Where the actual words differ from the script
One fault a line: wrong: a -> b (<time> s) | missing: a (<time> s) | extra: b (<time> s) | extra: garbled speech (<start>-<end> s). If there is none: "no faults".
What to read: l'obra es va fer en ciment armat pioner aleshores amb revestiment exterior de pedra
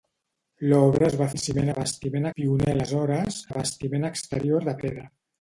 missing: fer (1.3 s)
wrong: armat -> revestiment (1.7 s)
missing: amb (3.4 s)